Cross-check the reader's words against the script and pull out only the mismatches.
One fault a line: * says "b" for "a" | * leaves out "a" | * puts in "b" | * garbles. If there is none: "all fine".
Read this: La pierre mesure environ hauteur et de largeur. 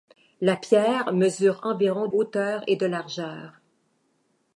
all fine